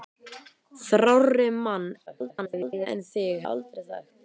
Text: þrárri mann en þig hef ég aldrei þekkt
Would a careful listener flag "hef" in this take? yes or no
yes